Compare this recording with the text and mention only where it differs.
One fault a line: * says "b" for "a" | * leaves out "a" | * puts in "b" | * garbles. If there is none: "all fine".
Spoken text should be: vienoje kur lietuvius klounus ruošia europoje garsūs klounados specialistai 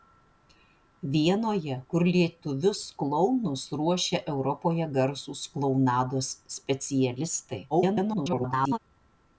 * garbles